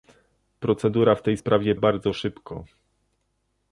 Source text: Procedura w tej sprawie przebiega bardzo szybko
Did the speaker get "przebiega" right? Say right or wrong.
wrong